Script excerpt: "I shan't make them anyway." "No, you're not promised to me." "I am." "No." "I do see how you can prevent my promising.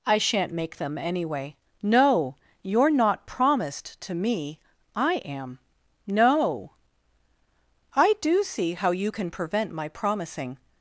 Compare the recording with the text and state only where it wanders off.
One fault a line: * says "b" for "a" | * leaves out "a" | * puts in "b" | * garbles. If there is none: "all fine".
all fine